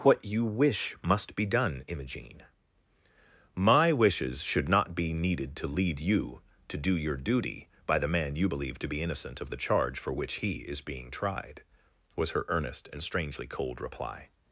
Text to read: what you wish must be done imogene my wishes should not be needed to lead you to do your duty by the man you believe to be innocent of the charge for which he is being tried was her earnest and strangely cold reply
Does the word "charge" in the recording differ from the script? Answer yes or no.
no